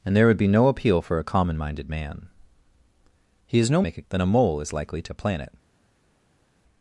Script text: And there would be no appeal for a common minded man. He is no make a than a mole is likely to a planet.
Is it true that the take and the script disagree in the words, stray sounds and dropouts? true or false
false